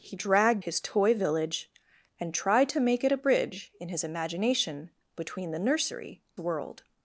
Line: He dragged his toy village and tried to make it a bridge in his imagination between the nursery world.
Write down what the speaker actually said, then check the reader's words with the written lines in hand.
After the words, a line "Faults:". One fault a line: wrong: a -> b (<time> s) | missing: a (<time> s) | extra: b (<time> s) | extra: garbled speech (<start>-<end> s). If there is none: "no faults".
He dragged his toy village and tried to make it a bridge in his imagination between the nursery world.
Faults:
no faults